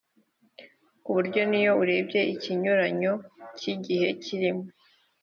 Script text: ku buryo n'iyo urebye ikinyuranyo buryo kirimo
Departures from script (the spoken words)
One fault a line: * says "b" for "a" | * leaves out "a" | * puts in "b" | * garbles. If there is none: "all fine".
* says "cy'igihe" for "buryo"